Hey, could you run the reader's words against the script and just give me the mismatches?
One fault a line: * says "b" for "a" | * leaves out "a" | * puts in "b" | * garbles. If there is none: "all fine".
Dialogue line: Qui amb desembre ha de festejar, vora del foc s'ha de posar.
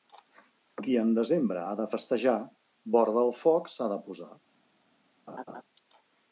* says "en" for "amb"